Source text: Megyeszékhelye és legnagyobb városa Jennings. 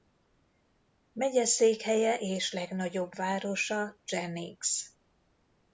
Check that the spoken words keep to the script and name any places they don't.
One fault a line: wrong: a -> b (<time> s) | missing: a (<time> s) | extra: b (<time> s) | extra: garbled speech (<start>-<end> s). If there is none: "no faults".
no faults